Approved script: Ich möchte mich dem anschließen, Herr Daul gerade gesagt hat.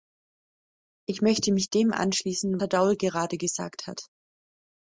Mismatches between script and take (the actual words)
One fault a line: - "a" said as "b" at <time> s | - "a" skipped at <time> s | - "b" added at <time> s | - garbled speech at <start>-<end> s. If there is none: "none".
none